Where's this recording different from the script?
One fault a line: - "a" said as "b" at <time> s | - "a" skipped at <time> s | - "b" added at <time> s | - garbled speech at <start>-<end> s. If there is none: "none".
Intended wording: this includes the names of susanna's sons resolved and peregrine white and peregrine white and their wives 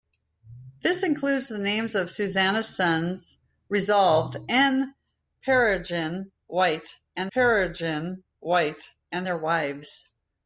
none